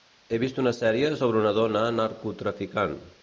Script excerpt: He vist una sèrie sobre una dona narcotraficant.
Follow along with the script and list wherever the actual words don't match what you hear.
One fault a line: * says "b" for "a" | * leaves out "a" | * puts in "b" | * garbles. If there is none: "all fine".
all fine